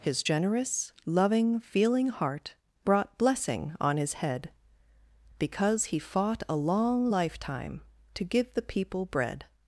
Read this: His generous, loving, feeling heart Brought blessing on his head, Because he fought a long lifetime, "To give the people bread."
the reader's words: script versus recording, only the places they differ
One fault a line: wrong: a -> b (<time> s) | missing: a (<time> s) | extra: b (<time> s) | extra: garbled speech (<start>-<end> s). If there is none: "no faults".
no faults